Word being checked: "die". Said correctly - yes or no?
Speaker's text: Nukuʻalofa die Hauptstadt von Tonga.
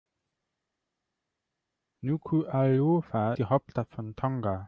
yes